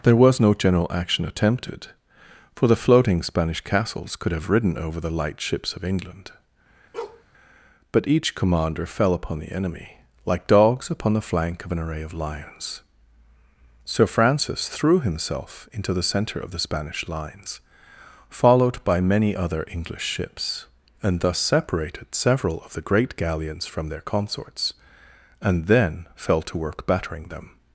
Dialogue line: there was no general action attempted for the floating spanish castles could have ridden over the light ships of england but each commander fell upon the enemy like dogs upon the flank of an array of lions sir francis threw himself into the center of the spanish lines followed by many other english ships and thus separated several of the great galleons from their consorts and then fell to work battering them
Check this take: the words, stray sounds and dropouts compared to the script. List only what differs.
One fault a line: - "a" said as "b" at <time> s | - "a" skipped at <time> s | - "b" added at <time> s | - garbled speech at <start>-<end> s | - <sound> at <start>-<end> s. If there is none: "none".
- bark at 6.9-7.2 s